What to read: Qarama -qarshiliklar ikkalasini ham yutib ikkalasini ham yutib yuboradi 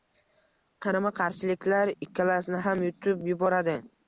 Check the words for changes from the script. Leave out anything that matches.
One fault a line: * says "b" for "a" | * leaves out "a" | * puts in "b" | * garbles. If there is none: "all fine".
* leaves out "ikkalasini ham yutib"